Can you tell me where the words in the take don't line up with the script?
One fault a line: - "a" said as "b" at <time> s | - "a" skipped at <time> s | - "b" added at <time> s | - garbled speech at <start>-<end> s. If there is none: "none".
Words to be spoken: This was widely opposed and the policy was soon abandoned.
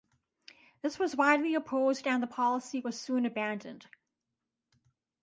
none